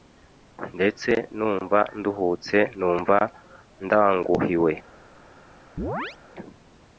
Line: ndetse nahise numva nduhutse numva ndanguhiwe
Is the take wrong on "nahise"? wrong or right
wrong